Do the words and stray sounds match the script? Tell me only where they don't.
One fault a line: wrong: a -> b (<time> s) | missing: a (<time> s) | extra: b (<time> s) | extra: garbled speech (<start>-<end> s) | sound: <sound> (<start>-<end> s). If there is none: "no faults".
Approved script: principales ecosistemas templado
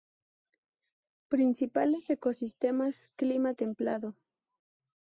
extra: clima (3.1 s)